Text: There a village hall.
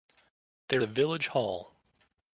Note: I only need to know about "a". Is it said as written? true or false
true